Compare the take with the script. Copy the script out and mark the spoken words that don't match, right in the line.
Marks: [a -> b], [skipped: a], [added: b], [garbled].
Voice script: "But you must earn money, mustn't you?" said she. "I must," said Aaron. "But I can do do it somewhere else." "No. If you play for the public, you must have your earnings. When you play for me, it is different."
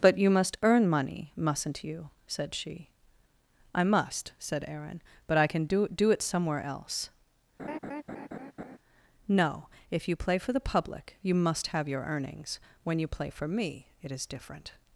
"But you must earn money, mustn't you?" said she. "I must," said Aaron. "But I can do do it somewhere else." "No. If you play for the public, you must have your earnings. When you play for me, it is different."